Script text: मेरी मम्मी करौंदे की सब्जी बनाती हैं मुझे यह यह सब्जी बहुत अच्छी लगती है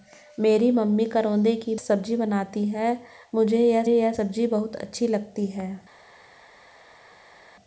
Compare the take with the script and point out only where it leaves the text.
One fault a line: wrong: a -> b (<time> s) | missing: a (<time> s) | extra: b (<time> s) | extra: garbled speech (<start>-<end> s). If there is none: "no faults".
no faults